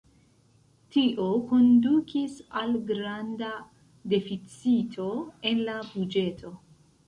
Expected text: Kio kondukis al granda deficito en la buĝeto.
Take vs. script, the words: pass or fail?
fail